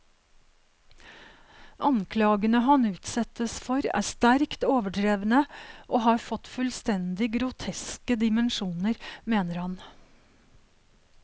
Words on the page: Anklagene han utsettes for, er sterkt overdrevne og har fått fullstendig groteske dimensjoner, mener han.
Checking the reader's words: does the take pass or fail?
pass